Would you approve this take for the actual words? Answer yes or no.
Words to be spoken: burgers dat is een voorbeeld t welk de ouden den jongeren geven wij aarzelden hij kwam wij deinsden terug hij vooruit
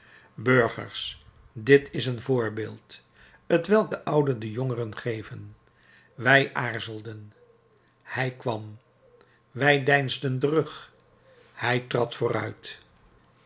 no